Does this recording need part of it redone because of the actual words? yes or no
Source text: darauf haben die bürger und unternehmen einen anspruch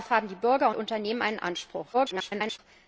yes